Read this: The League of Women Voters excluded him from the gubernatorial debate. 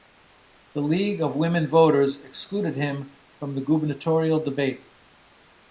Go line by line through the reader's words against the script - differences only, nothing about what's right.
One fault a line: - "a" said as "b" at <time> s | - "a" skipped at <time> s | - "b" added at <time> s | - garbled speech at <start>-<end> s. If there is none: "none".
none